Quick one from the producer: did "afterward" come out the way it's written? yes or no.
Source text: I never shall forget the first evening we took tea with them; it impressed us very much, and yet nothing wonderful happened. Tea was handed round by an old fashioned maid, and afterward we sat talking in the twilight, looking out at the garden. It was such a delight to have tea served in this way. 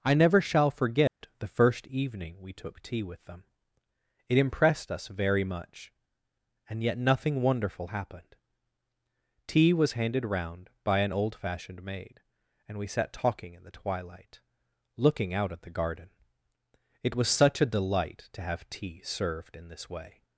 no